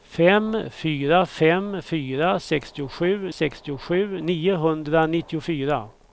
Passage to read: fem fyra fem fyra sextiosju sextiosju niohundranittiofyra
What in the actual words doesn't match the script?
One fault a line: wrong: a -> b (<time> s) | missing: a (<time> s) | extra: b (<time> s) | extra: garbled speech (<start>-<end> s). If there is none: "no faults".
no faults